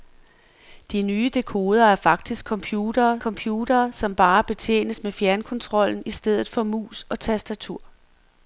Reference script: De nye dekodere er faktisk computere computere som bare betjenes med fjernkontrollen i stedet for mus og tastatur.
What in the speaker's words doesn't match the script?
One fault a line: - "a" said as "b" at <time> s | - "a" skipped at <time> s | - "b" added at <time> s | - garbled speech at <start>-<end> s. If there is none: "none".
none